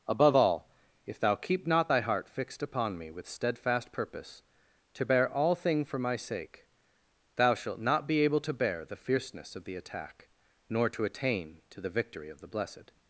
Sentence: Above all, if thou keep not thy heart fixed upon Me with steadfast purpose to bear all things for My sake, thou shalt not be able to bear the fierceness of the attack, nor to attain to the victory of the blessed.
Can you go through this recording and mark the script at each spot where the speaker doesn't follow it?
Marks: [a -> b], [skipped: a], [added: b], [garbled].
Above all, if thou keep not thy heart fixed upon Me with steadfast purpose to bear all [things -> thing] for My sake, thou shalt not be able to bear the fierceness of the attack, nor to attain to the victory of the blessed.